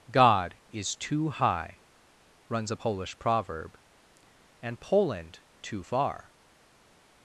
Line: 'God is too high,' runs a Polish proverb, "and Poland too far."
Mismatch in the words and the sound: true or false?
false